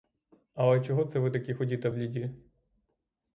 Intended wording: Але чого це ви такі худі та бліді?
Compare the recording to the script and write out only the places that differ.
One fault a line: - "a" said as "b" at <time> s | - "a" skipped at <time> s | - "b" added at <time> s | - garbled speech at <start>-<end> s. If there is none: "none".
none